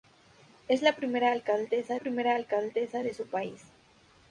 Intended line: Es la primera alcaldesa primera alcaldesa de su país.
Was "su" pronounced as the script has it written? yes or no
yes